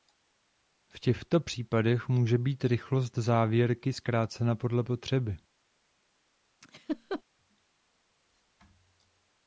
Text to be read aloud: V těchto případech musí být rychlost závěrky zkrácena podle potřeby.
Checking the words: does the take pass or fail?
fail